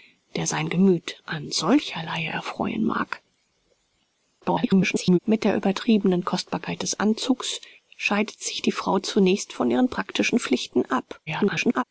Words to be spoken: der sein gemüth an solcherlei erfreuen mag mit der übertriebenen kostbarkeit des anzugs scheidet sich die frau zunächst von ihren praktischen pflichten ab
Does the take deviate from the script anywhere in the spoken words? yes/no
yes